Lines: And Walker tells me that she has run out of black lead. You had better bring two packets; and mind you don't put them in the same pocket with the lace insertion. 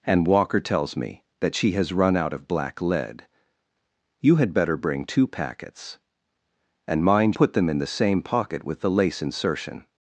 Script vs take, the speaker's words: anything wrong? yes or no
yes